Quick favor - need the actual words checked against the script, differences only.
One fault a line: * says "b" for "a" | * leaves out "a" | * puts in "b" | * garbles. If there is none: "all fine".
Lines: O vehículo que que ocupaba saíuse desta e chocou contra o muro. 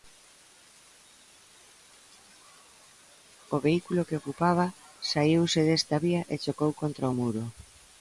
* leaves out "que"
* puts in "vía"